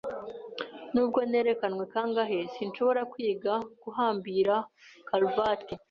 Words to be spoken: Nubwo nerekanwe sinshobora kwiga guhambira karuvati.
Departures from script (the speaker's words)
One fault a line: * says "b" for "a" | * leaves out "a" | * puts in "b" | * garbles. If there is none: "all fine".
* puts in "kangahe"